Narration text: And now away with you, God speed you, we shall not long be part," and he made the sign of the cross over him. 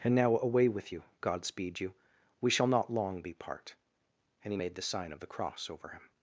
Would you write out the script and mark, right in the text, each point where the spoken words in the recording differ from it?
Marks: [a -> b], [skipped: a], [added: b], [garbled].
And now away with you, God speed you, we shall not long be part," and he made the sign of the cross over him.